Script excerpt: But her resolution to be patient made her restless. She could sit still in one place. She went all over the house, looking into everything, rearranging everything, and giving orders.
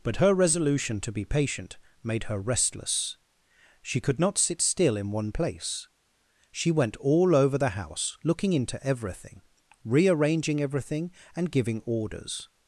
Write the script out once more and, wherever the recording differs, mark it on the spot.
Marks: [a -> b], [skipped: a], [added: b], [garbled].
But her resolution to be patient made her restless. She could [added: not] sit still in one place. She went all over the house, looking into everything, rearranging everything, and giving orders.